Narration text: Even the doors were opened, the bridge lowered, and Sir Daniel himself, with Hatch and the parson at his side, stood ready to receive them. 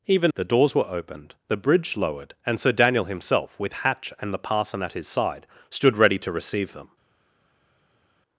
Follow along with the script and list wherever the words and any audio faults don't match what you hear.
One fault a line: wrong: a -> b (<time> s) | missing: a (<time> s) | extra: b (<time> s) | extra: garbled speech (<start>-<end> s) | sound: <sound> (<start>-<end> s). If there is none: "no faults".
no faults